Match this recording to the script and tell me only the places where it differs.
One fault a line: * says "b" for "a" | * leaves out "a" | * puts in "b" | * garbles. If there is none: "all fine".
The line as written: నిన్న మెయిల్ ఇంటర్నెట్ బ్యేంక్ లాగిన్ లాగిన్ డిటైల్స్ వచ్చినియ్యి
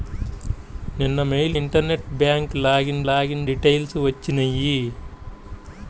all fine